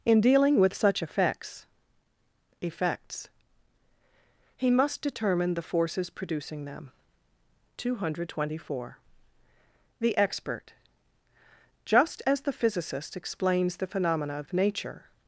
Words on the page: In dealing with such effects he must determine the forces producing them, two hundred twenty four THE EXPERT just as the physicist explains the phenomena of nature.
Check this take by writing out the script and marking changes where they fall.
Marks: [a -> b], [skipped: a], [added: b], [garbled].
In dealing with such effects [added: effects] he must determine the forces producing them, two hundred twenty four THE EXPERT just as the physicist explains the phenomena of nature.